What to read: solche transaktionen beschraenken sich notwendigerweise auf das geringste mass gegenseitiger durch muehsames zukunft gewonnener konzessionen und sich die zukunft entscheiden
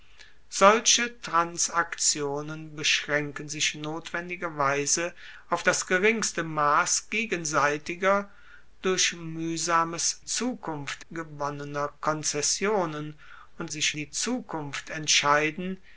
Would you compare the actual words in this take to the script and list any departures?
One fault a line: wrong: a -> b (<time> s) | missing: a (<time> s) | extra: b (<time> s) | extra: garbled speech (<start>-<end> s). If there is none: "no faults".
no faults